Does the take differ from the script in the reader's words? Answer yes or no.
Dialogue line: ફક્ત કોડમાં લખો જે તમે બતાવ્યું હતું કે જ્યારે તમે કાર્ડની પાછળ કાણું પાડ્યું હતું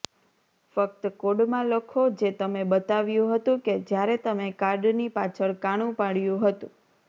no